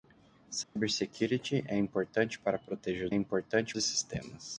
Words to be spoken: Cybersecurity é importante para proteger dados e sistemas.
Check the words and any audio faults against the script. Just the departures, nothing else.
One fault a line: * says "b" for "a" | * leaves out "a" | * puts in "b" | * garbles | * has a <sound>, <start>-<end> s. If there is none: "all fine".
* has a dropout, 0.6-0.8 s
* says "importante" for "dados"